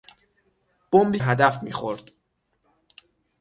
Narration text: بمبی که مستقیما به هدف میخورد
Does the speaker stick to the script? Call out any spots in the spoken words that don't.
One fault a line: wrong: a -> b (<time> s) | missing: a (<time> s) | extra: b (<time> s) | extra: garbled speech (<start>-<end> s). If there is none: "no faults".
missing: که مستقیما به (1.2 s)